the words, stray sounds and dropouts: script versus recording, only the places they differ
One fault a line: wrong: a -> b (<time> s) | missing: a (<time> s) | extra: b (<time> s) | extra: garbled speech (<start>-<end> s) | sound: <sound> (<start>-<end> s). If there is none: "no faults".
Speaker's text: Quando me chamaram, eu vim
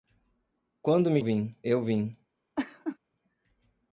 wrong: chamaram -> vim (1.2 s)
sound: laugh (2.6-3.0 s)